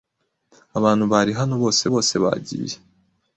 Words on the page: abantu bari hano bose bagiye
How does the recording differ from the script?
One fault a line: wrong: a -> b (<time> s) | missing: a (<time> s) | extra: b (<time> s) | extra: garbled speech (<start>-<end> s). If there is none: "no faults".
extra: bose (1.9 s)